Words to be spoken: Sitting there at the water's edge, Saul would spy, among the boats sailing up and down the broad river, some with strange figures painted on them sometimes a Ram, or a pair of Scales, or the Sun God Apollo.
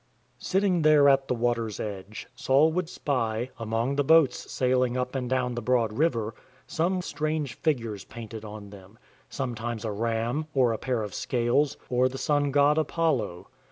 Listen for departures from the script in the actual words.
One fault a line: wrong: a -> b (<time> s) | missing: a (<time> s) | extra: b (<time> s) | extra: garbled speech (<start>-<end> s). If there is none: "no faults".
missing: with (7.0 s)